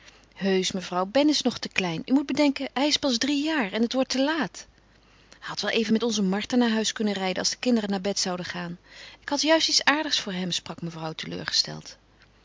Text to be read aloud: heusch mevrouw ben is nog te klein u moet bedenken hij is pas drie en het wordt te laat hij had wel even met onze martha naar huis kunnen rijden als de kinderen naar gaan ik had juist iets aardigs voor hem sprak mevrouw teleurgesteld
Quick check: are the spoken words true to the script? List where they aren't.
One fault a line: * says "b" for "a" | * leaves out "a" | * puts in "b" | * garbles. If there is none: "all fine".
* puts in "jaar"
* puts in "bed zouden"